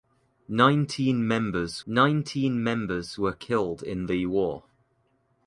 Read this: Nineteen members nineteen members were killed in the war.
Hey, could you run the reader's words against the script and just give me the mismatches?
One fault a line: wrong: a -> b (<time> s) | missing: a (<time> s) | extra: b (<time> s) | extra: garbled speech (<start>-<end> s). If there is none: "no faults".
no faults